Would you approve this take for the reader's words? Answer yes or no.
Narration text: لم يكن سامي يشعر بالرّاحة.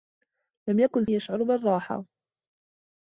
no